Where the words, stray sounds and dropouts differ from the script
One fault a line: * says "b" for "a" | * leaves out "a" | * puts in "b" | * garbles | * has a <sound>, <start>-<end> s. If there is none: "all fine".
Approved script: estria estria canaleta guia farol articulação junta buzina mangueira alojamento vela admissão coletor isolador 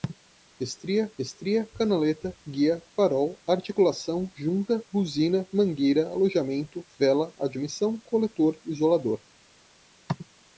all fine